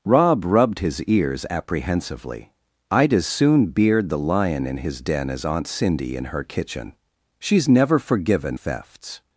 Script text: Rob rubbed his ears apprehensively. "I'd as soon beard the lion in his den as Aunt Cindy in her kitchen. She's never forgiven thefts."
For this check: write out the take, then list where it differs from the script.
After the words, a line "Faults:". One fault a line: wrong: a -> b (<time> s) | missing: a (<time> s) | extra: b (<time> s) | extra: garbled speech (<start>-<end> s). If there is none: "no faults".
Rob rubbed his ears apprehensively. "I'd as soon beard the lion in his den as Aunt Cindy in her kitchen. She's never forgiven thefts."
Faults:
no faults